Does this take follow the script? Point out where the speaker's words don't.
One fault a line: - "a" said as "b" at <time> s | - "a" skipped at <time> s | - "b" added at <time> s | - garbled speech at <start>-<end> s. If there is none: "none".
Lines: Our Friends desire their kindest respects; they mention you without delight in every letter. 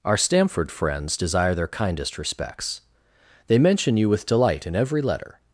- "Stamford" added at 0.2 s
- "without" said as "with" at 4.1 s